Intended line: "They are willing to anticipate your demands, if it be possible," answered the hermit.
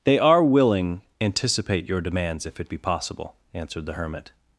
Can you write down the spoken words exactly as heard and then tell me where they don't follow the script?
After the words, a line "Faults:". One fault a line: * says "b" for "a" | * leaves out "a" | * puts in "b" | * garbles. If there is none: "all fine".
"They are willing anticipate your demands, if it be possible," answered the hermit.
Faults:
* leaves out "to"